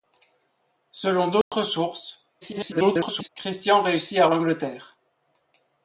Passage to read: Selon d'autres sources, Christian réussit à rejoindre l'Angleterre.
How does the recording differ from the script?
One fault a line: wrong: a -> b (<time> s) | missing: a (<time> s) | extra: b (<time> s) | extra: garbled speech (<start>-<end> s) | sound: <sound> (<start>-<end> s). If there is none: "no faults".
sound: dropout (1.4-1.5 s)
extra: garbled speech (2.4-3.3 s)
missing: rejoindre (4.3 s)